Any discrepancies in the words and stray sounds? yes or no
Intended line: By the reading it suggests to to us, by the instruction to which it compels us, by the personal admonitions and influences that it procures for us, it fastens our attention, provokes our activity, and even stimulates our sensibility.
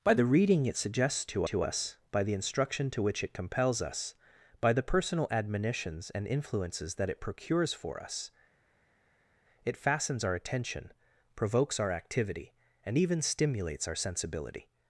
no